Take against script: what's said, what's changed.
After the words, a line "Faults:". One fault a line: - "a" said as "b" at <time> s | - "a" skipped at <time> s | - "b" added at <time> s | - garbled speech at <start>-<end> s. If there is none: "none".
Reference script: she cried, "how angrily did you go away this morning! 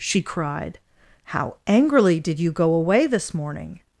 she cried, "how angrily did you go away this morning!
Faults:
none